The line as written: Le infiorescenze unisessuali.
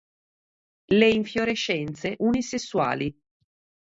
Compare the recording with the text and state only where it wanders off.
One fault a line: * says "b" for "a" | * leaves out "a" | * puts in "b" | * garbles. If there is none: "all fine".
all fine